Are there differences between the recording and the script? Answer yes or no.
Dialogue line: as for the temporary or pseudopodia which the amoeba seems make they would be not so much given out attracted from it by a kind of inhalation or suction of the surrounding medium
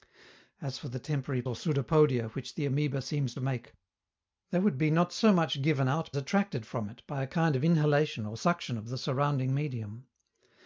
no